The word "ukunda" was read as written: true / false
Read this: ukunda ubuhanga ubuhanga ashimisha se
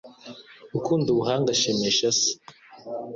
true